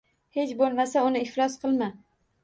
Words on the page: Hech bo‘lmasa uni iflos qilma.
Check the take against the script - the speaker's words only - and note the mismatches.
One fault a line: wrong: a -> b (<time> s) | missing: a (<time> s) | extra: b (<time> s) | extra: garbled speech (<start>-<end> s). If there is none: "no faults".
no faults